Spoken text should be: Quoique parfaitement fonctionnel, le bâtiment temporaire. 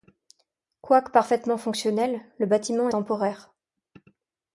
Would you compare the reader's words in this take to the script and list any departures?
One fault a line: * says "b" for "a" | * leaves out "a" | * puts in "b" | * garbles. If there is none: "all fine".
all fine